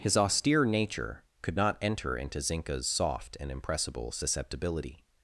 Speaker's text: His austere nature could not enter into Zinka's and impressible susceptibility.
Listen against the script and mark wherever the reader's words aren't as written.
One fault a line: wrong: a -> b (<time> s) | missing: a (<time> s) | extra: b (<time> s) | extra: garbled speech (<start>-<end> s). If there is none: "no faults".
extra: soft (2.9 s)